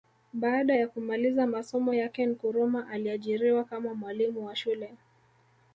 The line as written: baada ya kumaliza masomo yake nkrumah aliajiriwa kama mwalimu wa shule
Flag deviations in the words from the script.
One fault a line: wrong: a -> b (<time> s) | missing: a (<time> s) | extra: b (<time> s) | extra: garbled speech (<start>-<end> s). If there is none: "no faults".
no faults